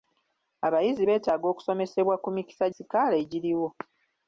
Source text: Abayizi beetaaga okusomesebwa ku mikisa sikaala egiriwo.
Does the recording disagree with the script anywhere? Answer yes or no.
no